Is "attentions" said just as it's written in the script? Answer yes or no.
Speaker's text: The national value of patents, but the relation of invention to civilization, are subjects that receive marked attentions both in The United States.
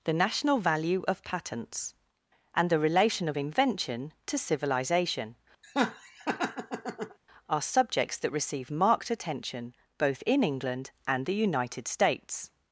no